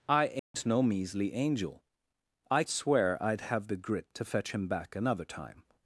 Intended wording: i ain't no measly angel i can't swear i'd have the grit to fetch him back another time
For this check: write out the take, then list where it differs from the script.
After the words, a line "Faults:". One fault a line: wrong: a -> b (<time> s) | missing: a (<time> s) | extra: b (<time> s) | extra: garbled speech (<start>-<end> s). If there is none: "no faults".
i ain't no measly angel i swear i'd have the grit to fetch him back another time
Faults:
missing: can't (2.6 s)